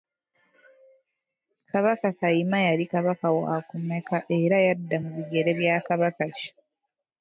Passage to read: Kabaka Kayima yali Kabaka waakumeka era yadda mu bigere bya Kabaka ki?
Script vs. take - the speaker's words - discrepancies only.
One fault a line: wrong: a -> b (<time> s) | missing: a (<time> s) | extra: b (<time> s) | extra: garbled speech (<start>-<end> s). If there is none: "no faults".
no faults